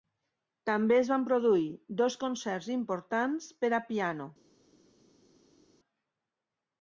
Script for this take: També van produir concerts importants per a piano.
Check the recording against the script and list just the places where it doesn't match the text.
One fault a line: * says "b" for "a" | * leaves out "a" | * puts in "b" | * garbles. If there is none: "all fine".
* puts in "es"
* puts in "dos"